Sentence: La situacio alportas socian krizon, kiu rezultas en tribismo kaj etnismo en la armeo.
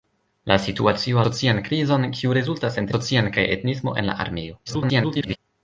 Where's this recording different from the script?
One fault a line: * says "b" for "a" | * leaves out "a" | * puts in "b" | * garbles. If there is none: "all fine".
* leaves out "alportas"
* says "socian" for "tribismo"
* garbles